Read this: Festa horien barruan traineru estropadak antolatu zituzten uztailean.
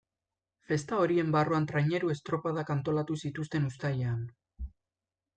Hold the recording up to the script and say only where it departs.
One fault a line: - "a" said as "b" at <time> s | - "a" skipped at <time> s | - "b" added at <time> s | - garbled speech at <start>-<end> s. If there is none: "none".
none